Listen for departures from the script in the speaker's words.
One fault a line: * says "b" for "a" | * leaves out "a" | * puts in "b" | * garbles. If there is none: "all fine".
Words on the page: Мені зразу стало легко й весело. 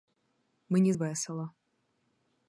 * leaves out "зразу стало легко"